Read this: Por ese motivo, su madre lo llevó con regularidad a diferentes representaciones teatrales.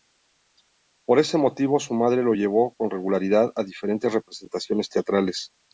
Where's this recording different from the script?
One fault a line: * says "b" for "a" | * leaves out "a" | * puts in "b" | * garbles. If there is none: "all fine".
all fine